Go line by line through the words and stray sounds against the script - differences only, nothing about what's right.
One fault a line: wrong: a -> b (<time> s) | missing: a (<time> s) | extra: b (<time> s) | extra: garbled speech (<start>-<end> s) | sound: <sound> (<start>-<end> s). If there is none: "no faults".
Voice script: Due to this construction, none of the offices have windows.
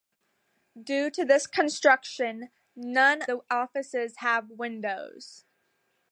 missing: of (3.2 s)